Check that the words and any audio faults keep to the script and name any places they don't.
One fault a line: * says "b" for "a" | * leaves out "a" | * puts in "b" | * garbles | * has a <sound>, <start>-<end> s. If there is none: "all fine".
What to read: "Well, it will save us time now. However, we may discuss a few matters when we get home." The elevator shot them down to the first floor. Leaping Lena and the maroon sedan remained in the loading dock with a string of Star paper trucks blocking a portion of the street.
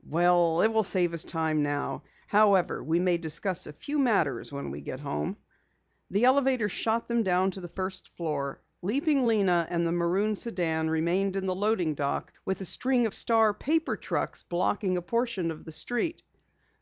all fine